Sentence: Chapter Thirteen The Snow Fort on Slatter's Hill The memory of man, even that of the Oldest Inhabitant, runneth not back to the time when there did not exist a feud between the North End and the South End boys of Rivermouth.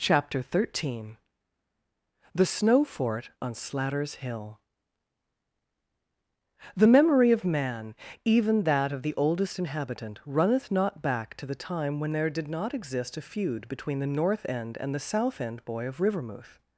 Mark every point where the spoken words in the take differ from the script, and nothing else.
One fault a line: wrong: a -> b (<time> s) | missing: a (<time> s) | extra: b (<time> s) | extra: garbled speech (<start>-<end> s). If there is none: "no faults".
wrong: boys -> boy (15.6 s)